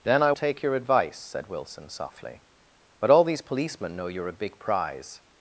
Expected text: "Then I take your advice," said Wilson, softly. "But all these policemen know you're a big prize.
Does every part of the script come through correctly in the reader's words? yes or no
yes